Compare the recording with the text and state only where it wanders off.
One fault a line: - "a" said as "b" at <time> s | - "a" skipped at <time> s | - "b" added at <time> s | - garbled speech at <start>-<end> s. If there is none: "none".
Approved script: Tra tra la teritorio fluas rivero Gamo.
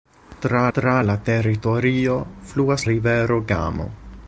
none